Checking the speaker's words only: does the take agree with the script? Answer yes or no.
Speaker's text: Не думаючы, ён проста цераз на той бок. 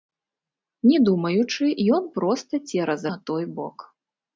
yes